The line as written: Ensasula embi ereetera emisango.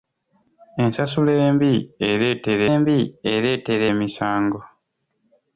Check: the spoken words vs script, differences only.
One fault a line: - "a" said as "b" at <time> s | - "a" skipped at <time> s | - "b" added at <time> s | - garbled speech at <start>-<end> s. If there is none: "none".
- "embi ereetera" added at 2.8 s